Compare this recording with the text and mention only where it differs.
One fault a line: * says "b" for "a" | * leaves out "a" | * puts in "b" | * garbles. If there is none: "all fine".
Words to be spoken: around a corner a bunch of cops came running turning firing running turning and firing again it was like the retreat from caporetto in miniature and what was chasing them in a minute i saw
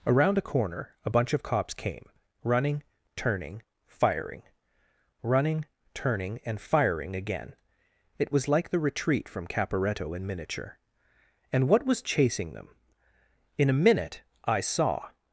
all fine